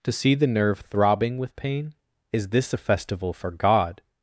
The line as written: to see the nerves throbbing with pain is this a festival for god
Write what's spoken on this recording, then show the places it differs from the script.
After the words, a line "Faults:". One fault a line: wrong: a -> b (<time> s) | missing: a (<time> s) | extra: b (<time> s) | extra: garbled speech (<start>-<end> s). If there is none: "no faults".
to see the nerve throbbing with pain is this a festival for god
Faults:
wrong: nerves -> nerve (0.5 s)